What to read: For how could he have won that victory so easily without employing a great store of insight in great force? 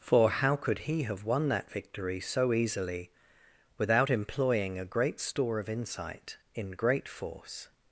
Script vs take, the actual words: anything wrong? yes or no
no